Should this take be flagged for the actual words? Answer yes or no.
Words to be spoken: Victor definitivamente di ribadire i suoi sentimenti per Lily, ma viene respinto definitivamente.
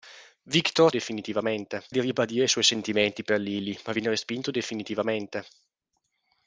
no